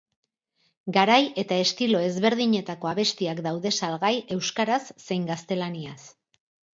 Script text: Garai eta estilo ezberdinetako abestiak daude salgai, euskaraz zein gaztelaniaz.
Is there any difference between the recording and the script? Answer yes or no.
no